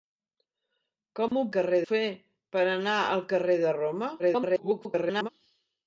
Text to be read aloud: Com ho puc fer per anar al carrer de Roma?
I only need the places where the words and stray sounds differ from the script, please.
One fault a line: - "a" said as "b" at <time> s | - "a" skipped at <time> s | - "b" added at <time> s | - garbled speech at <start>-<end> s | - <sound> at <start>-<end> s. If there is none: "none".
- dropout at 1.3-1.3 s
- "puc" said as "carrer" at 1.6 s
- garbled speech at 4.2-5.3 s